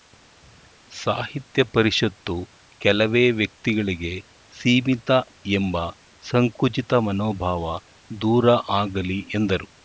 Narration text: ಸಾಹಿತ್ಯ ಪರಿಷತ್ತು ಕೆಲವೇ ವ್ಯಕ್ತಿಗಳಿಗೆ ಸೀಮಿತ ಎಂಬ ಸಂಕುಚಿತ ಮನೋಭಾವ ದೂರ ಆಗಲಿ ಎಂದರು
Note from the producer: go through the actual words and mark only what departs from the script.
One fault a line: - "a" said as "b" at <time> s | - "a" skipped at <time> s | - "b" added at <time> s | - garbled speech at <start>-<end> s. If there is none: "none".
none